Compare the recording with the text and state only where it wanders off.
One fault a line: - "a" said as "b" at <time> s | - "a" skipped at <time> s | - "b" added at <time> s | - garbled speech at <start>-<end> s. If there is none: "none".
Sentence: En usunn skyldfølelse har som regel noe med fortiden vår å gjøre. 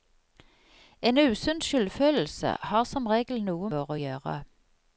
- "med fortiden" skipped at 3.7 s